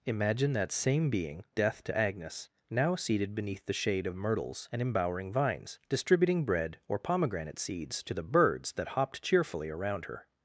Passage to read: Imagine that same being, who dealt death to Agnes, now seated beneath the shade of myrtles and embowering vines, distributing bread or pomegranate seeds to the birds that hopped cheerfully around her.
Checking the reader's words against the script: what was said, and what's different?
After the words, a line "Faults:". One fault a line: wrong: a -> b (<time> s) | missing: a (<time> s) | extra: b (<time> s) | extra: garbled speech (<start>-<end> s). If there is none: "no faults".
Imagine that same being, death to Agnes, now seated beneath the shade of myrtles and embowering vines, distributing bread or pomegranate seeds to the birds that hopped cheerfully around her.
Faults:
missing: who dealt (1.4 s)